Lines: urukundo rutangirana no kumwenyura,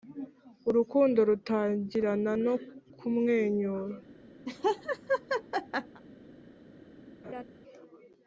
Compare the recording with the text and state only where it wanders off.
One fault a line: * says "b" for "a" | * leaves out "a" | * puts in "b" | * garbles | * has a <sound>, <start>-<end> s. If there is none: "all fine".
* has a laugh, 4.5-6.0 s
* has a laugh, 7.2-7.4 s